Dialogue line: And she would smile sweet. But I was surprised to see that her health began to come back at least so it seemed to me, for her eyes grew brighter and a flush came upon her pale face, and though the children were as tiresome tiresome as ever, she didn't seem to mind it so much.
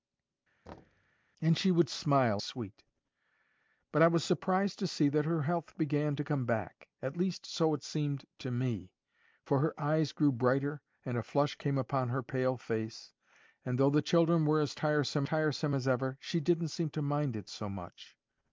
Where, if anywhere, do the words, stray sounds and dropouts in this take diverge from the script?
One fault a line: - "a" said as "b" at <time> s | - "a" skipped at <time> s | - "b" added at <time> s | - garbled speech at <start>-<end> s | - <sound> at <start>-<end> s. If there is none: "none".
- thud at 0.7-1.1 s